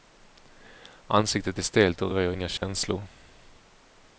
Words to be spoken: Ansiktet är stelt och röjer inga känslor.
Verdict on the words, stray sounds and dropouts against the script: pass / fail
fail